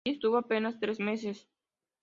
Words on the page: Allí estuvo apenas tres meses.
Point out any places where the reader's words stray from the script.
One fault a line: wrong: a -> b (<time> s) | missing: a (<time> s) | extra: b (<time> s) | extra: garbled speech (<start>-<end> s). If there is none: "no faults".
no faults